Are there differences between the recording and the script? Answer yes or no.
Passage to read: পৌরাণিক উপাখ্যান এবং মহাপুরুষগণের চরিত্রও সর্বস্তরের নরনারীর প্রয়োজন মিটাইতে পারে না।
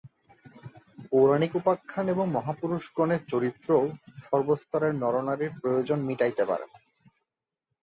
no